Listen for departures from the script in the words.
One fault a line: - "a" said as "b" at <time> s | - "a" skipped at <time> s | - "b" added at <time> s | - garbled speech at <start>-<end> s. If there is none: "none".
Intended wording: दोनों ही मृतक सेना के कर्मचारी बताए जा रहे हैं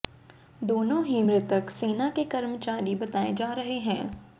none